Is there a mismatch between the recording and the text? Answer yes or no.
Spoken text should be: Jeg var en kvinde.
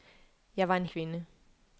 no